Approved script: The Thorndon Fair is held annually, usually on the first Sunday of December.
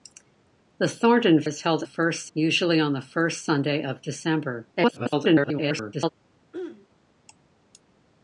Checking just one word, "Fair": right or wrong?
wrong